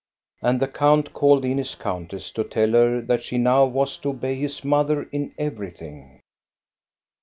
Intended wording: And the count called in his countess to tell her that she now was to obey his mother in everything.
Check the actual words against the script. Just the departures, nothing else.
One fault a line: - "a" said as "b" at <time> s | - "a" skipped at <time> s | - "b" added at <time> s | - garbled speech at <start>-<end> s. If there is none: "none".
none